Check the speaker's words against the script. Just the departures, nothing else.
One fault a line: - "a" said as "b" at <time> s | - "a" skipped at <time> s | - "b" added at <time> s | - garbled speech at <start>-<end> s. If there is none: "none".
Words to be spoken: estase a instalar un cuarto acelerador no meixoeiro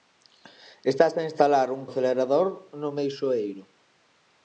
- "cuarto" skipped at 1.8 s